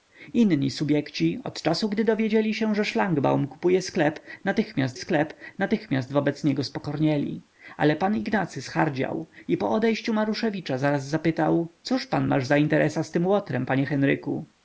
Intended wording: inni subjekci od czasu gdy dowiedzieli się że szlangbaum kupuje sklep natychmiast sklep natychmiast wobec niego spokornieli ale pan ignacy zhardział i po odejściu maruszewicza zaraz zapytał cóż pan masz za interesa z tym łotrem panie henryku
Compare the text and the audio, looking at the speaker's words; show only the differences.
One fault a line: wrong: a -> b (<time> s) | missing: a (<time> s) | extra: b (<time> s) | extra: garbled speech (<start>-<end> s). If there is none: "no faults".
no faults